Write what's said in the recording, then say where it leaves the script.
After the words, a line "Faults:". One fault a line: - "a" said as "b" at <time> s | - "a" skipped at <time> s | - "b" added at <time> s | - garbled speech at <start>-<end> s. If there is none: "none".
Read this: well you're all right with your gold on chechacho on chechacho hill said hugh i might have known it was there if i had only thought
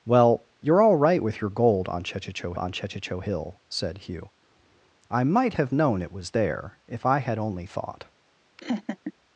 well you're all right with your gold on chechacho on chechacho hill said hugh i might have known it was there if i had only thought
Faults:
none